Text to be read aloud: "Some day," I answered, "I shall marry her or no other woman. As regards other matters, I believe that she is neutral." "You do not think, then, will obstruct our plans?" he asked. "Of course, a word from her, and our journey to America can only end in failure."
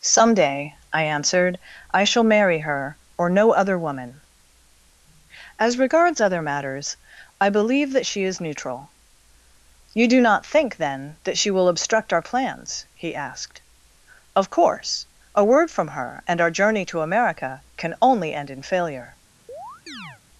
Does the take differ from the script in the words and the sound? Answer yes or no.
yes